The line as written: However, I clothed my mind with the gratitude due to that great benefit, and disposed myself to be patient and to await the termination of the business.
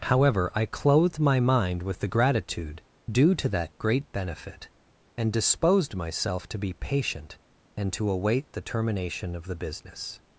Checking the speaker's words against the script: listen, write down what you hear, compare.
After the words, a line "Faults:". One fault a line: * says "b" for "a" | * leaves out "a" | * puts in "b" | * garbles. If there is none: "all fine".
However, I clothed my mind with the gratitude due to that great benefit, and disposed myself to be patient and to await the termination of the business.
Faults:
all fine